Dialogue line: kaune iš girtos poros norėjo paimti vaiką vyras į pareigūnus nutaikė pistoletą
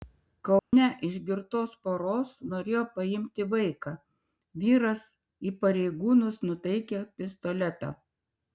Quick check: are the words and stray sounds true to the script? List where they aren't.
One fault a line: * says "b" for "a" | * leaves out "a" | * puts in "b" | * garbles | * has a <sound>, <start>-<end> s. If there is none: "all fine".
* has a dropout, 0.6-0.7 s